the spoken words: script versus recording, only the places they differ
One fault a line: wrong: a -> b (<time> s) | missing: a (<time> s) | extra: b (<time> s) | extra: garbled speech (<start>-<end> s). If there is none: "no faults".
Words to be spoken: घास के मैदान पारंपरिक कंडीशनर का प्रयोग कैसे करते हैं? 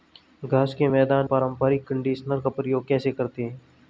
no faults